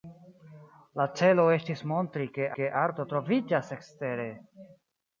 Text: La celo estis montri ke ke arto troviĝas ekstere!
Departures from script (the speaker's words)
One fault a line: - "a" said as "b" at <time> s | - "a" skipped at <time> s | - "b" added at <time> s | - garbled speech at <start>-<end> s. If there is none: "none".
none